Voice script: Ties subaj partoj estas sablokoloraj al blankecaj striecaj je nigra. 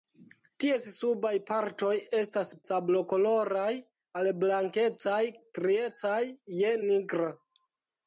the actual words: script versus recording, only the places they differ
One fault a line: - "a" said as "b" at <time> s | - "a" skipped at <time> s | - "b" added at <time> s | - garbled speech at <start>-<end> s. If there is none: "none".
none